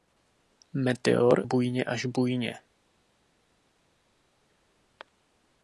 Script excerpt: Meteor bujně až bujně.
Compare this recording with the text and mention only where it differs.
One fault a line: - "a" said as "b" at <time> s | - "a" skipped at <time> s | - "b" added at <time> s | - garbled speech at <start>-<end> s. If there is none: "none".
none